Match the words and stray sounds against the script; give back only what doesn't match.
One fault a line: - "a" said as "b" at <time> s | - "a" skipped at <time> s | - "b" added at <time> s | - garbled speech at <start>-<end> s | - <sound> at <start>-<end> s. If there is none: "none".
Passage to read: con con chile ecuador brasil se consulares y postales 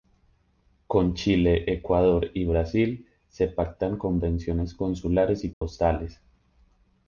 - "con" skipped at 1.1 s
- "y" added at 2.3 s
- "pactan convenciones" added at 3.5 s
- dropout at 5.5-5.6 s